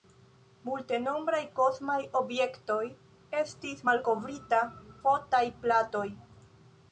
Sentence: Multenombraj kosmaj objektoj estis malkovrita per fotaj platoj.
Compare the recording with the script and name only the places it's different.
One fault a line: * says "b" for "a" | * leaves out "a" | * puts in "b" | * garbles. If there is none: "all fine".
* leaves out "per"